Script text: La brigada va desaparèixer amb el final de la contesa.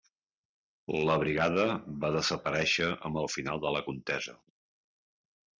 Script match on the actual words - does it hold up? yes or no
yes